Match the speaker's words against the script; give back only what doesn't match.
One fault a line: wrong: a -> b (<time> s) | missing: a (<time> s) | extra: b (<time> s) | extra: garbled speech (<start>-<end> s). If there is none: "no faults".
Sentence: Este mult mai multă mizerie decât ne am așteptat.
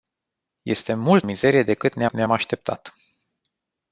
missing: mai multă (1.2 s)
extra: ne (2.1 s)